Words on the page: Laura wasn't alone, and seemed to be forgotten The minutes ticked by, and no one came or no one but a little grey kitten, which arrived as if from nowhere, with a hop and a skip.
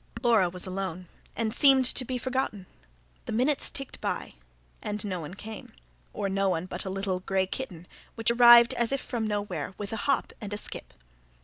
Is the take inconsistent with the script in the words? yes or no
yes